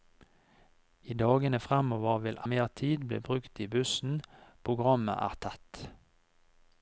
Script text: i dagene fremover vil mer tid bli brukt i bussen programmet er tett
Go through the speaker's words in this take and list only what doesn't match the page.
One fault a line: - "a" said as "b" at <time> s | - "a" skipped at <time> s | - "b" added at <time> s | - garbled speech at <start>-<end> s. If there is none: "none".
none